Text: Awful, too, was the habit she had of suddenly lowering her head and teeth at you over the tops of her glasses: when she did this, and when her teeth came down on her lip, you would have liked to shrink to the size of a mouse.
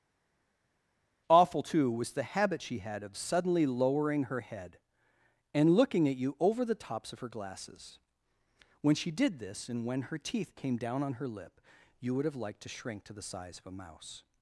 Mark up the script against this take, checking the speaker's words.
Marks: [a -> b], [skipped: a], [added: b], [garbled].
Awful, too, was the habit she had of suddenly lowering her head and [teeth -> looking] at you over the tops of her glasses: when she did this, and when her teeth came down on her lip, you would have liked to shrink to the size of a mouse.